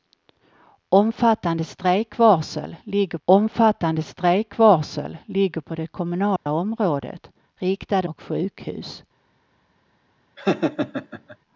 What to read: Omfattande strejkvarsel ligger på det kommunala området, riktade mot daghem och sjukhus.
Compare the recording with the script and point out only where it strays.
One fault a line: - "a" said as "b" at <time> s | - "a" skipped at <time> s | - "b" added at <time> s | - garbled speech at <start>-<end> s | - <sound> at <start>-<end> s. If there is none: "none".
- "omfattande strejkvarsel ligger" added at 3.2 s
- dropout at 6.4-6.5 s
- "mot daghem" skipped at 8.1 s
- laugh at 10.4-11.4 s